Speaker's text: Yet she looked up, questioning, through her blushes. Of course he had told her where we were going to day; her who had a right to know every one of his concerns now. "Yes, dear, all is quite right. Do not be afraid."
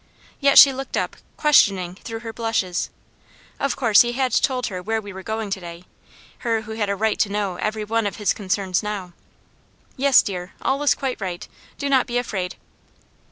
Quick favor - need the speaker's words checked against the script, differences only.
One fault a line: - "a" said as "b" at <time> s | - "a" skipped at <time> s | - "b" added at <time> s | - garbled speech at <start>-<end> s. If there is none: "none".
none